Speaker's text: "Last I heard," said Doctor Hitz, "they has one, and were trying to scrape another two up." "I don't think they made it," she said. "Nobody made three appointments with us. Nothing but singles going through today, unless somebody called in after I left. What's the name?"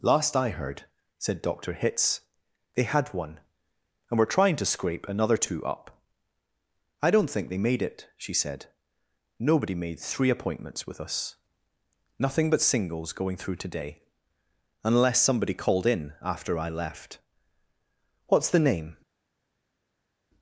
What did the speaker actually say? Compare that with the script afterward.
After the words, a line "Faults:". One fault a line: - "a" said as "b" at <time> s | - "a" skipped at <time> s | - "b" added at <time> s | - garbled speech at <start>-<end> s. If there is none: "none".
"Last I heard," said Doctor Hitz, "they had one, and were trying to scrape another two up." "I don't think they made it," she said. "Nobody made three appointments with us. Nothing but singles going through today, unless somebody called in after I left. What's the name?"
Faults:
- "has" said as "had" at 2.8 s